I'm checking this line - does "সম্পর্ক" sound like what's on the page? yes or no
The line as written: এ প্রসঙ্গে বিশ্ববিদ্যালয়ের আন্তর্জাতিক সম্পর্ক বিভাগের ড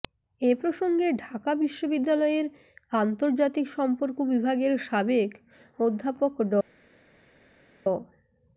yes